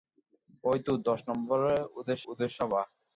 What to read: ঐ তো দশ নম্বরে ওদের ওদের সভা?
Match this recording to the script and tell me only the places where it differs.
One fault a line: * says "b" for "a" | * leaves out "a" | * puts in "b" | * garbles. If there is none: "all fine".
all fine